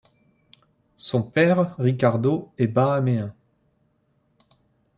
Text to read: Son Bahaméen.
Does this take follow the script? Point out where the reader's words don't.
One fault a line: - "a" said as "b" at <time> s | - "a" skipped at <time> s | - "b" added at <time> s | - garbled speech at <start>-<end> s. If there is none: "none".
- "père Ricardo est" added at 1.2 s